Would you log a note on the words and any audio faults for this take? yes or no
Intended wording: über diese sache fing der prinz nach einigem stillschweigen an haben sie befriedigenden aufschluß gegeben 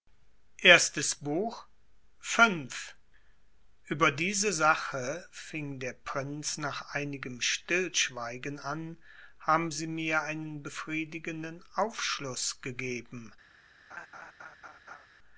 yes